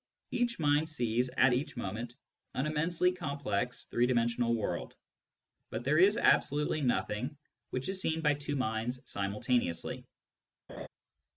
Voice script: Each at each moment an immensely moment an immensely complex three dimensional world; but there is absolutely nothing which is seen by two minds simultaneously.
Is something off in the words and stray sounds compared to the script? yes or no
yes